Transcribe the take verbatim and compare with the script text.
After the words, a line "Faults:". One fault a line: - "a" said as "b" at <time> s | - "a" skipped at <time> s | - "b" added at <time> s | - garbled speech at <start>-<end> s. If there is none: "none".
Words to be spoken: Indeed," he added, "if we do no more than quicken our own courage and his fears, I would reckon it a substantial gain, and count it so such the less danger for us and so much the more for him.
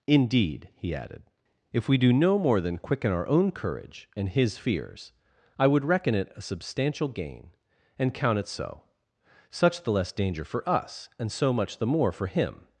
Indeed," he added, "if we do no more than quicken our own courage and his fears, I would reckon it a substantial gain, and count it so such the less danger for us and so much the more for him.
Faults:
none